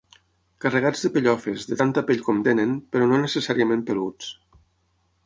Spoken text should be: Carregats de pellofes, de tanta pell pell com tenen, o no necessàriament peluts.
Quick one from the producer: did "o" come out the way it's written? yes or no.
no